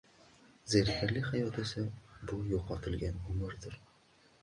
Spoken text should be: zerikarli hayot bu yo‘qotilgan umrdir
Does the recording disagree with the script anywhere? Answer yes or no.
yes